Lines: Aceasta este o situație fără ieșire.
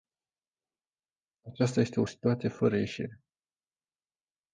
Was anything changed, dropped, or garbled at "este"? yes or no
no